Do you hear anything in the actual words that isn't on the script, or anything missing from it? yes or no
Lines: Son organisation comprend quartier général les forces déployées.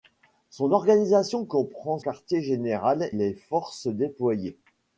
no